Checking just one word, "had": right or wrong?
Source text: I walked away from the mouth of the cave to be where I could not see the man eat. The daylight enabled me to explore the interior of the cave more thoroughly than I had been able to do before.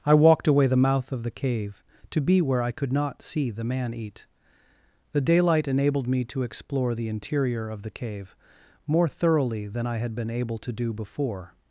right